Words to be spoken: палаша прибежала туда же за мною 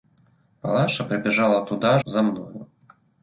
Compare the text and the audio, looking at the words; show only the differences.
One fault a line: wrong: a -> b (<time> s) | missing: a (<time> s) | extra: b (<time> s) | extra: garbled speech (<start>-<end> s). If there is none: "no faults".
missing: же (2.0 s)